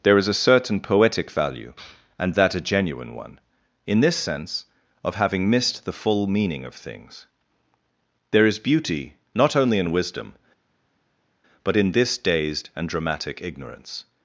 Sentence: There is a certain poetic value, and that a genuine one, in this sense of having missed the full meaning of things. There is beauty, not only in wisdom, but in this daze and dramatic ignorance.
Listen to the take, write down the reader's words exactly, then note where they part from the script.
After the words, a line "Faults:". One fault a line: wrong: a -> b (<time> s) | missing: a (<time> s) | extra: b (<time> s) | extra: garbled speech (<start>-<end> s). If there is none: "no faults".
There is a certain poetic value, and that a genuine one, in this sense of having missed the full meaning of things. There is beauty, not only in wisdom, but in this dazed and dramatic ignorance.
Faults:
wrong: daze -> dazed (12.2 s)